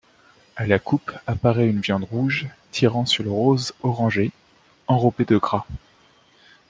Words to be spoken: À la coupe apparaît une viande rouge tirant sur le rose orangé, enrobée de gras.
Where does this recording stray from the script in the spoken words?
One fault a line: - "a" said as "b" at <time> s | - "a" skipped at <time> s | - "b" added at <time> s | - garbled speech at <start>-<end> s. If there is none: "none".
none